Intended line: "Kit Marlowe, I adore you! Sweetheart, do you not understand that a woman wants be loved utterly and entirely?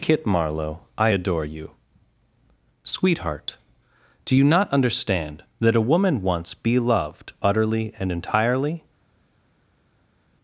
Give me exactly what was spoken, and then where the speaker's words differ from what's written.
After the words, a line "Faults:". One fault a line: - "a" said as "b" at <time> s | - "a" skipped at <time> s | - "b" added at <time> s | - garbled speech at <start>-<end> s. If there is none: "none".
"Kit Marlowe, I adore you! Sweetheart, do you not understand that a woman wants be loved utterly and entirely?
Faults:
none